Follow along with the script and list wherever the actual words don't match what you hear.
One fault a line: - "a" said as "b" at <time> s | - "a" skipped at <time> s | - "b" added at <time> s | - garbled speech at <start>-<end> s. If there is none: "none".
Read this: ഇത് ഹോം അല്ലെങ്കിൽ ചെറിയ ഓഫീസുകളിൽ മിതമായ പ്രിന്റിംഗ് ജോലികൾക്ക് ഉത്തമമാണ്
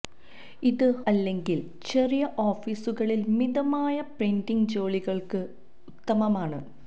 - "ഹോം" skipped at 0.8 s